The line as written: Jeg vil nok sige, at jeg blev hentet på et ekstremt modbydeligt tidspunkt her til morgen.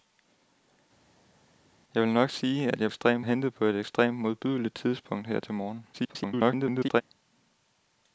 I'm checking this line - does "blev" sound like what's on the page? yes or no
no